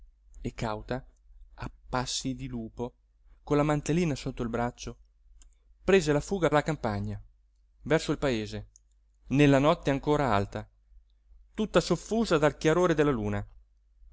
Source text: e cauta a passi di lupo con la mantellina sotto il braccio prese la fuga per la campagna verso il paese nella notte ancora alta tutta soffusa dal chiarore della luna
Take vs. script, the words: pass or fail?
fail